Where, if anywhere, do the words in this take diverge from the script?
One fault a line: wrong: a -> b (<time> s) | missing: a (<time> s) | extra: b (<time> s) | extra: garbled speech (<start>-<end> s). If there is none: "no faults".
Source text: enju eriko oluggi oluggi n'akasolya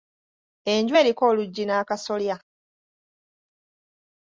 missing: oluggi (1.6 s)